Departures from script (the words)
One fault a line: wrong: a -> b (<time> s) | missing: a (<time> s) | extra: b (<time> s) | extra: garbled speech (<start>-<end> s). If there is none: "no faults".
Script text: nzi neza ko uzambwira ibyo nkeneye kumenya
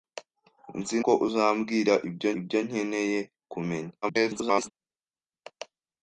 missing: neza (1.0 s)
extra: ibyo (2.4 s)
extra: garbled speech (4.0-4.7 s)